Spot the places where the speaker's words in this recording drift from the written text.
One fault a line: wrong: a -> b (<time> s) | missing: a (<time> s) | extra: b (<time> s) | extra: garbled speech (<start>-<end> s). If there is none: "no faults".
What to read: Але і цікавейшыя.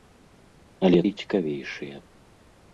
no faults